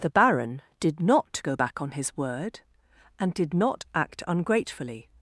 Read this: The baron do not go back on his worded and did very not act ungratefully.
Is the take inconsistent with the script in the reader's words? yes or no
yes